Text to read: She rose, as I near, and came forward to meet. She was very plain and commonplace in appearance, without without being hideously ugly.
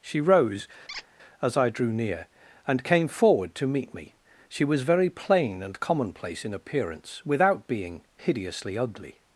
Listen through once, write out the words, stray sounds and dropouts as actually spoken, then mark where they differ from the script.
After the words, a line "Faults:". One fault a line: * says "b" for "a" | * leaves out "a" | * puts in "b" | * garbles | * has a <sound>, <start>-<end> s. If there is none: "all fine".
She rose, as I drew near, and came forward to meet me. She was very plain and commonplace in appearance, without being hideously ugly.
Faults:
* has a squeak, 0.9-1.1 s
* puts in "drew"
* puts in "me"
* leaves out "without"